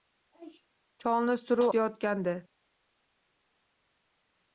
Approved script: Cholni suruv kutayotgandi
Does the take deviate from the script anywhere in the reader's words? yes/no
no